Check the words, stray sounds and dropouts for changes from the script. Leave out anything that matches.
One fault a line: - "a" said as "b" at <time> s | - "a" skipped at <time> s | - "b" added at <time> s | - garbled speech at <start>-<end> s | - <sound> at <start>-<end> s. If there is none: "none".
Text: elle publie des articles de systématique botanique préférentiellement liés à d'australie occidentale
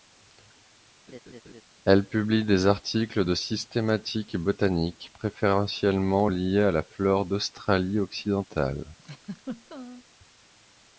- laugh at 1.1-1.6 s
- "la flore" added at 6.7 s
- laugh at 9.0-10.0 s